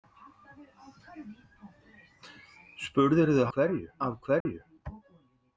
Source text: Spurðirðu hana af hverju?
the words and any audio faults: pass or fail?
fail